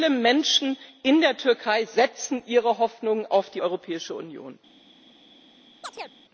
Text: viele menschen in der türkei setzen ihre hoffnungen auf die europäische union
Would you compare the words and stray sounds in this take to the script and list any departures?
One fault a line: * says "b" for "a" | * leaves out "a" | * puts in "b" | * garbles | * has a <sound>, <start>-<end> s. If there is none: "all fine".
* has a chirp, 5.8-6.2 s